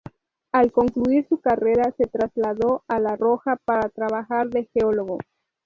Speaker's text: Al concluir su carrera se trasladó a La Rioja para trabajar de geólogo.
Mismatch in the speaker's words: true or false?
false